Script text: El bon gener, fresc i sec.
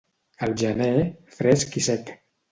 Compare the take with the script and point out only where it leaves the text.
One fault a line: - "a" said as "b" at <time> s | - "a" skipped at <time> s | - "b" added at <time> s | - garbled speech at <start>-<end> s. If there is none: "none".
- "bon" skipped at 0.6 s